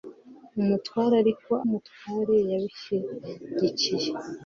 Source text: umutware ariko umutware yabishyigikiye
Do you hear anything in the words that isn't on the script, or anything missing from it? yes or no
no